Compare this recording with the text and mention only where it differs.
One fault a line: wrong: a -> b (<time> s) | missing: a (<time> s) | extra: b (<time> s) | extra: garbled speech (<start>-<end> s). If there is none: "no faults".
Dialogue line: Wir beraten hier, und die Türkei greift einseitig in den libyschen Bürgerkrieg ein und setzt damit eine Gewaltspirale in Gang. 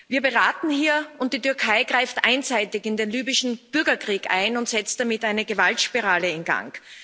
no faults